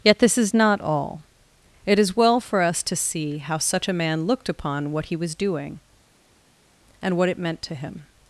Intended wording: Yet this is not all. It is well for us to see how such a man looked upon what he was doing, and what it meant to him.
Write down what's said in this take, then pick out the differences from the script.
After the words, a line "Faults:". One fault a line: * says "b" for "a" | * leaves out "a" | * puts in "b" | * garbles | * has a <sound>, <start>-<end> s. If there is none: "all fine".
Yet this is not all. It is well for us to see how such a man looked upon what he was doing, and what it meant to him.
Faults:
all fine